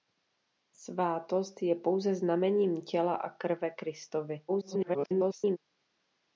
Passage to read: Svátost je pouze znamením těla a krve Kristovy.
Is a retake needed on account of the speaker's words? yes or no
yes